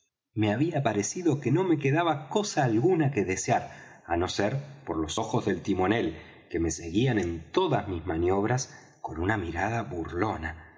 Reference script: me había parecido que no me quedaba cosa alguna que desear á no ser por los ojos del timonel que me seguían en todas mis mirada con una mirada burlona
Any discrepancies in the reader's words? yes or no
yes